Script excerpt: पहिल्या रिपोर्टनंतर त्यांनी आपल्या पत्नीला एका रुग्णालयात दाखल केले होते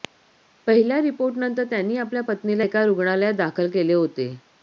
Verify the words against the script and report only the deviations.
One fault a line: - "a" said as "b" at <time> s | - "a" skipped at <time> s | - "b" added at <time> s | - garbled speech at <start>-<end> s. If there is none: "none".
none